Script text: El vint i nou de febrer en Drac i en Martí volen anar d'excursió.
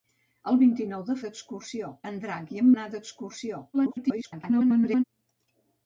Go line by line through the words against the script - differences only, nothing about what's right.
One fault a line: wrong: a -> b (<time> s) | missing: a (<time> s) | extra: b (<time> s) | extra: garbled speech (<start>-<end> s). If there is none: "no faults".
wrong: febrer -> d'excursió (1.3 s)
missing: Martí volen (2.7 s)
extra: garbled speech (3.7-5.0 s)